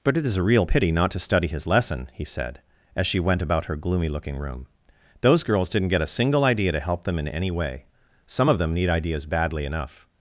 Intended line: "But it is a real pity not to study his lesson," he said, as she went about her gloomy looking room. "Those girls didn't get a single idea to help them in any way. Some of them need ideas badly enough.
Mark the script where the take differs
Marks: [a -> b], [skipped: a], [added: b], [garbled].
"But it is a real pity not to study his lesson," he said, as she went about her gloomy looking room. "Those girls didn't get a single idea to help them in any way. Some of them need ideas badly enough.